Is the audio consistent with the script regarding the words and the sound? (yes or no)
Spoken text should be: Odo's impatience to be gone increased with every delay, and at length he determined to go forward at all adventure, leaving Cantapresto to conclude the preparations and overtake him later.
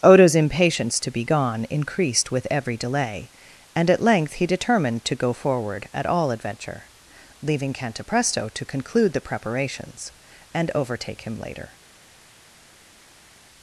yes